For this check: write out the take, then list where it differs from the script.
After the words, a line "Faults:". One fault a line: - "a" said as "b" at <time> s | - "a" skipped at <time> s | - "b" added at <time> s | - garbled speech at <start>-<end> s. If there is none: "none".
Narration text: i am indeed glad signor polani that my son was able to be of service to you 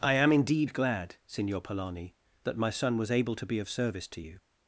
i am indeed glad signor polani that my son was able to be of service to you
Faults:
none